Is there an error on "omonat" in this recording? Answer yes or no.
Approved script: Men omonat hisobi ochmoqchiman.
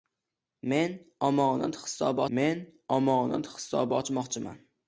no